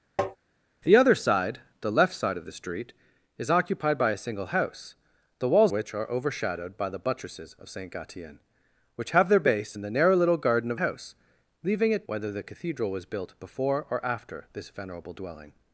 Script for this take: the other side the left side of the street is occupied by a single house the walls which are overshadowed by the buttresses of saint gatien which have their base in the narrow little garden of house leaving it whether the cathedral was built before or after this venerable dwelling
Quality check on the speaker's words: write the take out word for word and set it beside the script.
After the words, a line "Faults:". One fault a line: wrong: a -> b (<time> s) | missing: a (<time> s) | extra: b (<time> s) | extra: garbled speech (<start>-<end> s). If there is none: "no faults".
the other side the left side of the street is occupied by a single house the walls which are overshadowed by the buttresses of saint gatien which have their base in the narrow little garden of house leaving it whether the cathedral was built before or after this venerable dwelling
Faults:
no faults